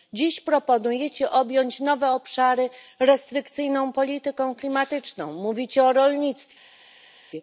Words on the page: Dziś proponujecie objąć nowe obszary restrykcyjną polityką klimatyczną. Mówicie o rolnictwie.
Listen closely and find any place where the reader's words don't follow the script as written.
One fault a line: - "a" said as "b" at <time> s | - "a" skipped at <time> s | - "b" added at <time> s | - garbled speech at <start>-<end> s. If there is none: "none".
none